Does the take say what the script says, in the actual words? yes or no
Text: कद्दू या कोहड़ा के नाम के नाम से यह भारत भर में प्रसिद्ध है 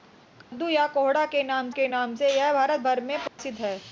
yes